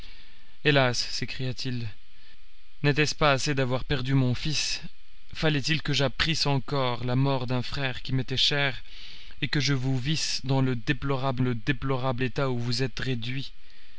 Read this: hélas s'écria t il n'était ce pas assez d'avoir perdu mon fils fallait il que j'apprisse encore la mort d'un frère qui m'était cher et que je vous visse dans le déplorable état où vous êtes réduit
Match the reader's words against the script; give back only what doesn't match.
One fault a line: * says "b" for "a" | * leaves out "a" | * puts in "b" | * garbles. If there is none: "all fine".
* puts in "le déplorable"